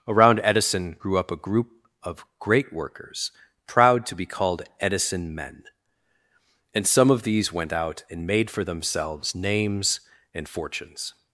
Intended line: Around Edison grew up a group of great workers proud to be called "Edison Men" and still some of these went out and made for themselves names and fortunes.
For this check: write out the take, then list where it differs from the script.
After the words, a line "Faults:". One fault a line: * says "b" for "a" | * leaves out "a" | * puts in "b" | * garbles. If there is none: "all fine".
Around Edison grew up a group of great workers proud to be called "Edison Men" and some of these went out and made for themselves names and fortunes.
Faults:
* leaves out "still"